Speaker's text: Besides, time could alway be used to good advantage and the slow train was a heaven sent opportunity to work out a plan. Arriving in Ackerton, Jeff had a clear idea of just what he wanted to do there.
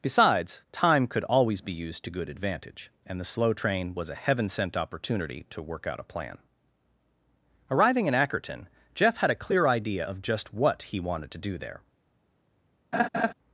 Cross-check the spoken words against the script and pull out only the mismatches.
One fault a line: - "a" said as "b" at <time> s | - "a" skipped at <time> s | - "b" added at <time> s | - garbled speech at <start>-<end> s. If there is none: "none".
- "alway" said as "always" at 1.2 s